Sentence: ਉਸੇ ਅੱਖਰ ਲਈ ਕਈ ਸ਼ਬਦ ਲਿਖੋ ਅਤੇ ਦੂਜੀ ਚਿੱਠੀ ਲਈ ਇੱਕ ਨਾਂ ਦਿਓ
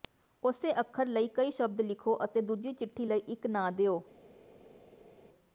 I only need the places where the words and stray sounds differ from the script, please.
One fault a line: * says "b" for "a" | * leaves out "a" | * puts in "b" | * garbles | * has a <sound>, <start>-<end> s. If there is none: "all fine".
all fine